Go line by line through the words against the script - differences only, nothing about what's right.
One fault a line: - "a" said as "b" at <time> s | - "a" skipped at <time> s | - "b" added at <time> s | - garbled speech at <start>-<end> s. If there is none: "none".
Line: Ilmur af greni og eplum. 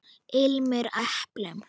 - "af greni og" skipped at 0.9 s